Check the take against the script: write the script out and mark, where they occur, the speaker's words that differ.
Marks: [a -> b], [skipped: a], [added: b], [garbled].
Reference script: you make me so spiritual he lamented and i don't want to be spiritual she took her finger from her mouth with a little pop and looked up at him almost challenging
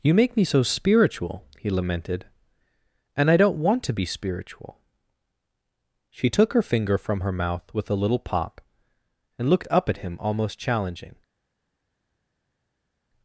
you make me so spiritual he lamented and i don't want to be spiritual she took her finger from her mouth with a little pop and looked up at him almost challenging